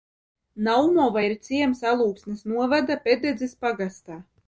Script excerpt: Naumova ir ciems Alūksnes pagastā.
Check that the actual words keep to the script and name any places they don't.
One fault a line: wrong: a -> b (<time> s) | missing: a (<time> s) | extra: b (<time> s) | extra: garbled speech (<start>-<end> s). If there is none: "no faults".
extra: novada Pededzes (2.6 s)